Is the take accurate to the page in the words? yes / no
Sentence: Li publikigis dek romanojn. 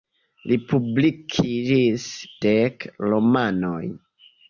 yes